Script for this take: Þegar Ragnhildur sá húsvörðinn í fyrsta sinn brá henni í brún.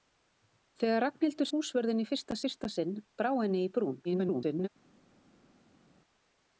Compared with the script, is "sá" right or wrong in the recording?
wrong